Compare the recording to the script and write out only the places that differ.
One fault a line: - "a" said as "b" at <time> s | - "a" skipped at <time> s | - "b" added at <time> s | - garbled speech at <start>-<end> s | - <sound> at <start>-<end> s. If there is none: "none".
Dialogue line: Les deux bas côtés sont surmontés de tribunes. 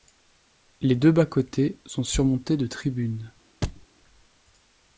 - thud at 3.6-3.9 s